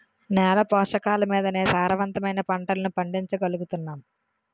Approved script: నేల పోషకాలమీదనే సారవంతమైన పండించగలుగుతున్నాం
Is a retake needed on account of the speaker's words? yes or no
yes